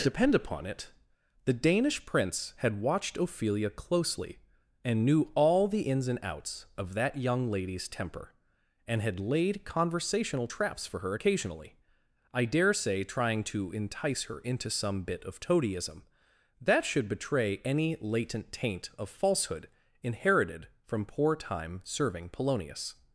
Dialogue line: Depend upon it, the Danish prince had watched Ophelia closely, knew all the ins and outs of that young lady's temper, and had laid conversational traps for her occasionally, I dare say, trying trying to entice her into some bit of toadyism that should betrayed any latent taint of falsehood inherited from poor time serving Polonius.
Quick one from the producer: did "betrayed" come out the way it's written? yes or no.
no